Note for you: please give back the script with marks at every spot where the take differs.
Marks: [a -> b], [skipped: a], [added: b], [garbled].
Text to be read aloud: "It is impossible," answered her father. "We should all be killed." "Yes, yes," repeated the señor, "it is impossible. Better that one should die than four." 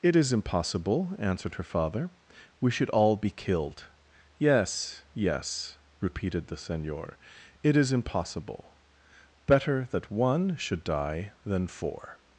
"It is impossible," answered her father. "We should all be killed." "Yes, yes," repeated the señor, "it is impossible. Better that one should die than four."